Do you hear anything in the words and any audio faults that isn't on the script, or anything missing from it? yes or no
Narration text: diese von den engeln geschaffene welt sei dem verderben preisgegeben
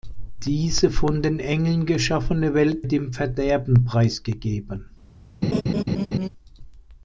yes